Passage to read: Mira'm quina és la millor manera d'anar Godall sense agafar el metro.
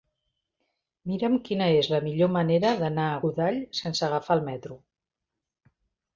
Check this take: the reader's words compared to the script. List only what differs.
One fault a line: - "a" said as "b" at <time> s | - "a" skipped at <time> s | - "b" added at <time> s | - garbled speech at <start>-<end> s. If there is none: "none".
- "a" added at 3.1 s